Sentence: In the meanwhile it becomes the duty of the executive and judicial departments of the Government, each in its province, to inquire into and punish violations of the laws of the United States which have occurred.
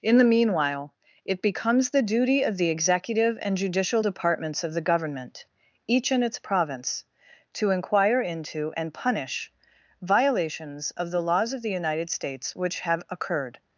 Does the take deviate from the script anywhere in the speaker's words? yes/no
no